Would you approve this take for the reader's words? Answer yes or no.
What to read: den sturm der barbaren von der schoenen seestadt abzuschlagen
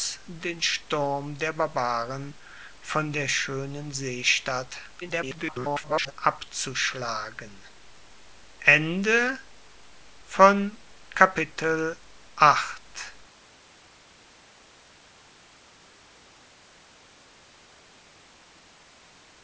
no